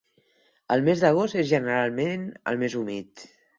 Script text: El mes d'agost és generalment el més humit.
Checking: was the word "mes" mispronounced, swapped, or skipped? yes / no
no